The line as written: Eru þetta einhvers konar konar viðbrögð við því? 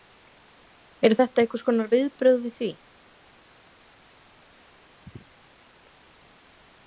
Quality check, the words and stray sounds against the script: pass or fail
fail